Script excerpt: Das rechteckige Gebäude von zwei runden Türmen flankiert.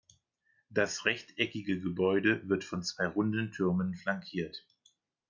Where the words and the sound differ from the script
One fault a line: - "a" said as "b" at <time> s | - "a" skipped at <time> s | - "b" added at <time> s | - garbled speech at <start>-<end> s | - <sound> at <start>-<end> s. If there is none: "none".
- "wird" added at 2.5 s